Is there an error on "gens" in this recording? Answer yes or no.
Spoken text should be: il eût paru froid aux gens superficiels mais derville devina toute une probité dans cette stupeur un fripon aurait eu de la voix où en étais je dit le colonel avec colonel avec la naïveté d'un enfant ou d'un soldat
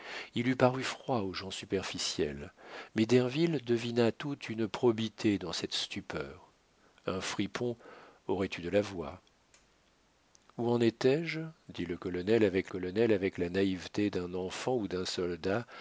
no